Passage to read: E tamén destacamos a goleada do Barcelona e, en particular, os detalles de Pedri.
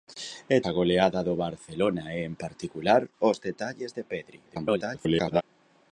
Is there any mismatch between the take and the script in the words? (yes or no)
yes